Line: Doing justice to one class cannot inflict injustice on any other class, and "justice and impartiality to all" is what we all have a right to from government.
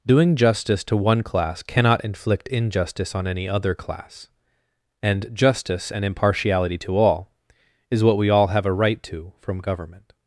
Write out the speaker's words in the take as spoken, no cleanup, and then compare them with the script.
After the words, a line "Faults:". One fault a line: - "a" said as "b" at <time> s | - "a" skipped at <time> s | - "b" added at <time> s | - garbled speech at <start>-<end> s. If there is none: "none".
Doing justice to one class cannot inflict injustice on any other class, and "justice and impartiality to all" is what we all have a right to from government.
Faults:
none